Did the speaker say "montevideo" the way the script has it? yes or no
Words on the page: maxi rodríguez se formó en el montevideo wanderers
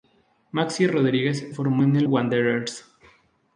no